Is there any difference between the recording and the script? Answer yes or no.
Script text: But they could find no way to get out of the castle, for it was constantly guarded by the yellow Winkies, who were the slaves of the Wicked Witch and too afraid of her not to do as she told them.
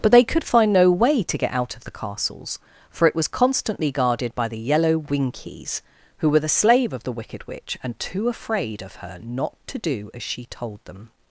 yes